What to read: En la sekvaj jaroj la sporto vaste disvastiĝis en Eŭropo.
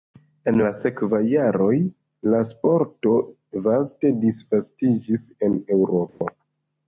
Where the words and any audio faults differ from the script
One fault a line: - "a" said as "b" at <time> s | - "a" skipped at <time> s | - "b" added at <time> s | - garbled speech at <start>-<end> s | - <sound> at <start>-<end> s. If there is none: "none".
- dropout at 6.1-6.2 s